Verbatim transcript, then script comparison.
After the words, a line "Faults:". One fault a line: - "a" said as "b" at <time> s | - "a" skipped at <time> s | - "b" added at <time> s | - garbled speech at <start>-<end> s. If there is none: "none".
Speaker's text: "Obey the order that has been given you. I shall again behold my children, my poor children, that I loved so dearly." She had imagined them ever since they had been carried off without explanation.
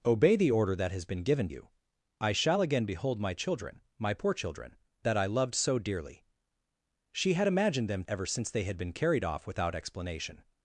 "Obey the order that has been given you. I shall again behold my children, my poor children, that I loved so dearly." She had imagined them ever since they had been carried off without explanation.
Faults:
none